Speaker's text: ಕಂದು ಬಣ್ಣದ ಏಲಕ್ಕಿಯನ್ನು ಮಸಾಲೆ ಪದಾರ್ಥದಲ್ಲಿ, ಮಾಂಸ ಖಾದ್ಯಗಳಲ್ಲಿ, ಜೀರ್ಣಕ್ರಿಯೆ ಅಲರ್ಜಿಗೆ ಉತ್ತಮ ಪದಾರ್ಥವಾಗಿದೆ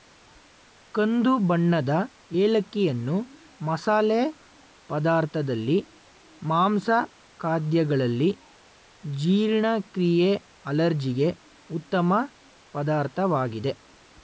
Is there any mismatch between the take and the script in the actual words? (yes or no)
no